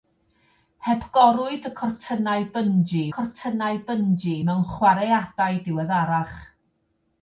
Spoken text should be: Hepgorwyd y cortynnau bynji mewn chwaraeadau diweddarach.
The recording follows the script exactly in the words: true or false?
false